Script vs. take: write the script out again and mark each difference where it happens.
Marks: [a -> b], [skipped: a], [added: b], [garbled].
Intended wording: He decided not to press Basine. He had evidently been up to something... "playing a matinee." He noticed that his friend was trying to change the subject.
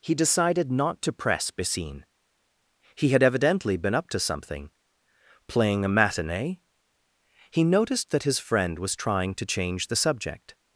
He decided not to press Basine. He had evidently been up to something... "playing a matinee." He noticed that his friend was trying to change the subject.